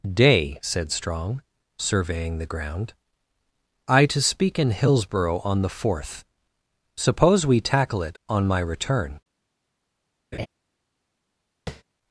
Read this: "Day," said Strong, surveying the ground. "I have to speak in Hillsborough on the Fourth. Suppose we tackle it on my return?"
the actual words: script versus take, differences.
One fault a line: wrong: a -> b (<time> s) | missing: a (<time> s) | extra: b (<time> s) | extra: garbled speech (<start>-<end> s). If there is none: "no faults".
missing: have (4.0 s)